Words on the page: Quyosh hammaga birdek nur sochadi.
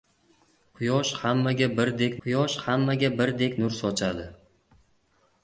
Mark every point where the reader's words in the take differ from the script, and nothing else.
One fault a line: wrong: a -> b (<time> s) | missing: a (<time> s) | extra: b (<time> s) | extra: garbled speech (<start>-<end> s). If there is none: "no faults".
extra: quyosh hammaga birdek (2.2 s)